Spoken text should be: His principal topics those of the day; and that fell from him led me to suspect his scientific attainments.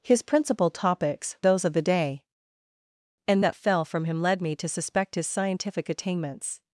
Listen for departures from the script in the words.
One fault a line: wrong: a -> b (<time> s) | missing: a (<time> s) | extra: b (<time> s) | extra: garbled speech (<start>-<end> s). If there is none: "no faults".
no faults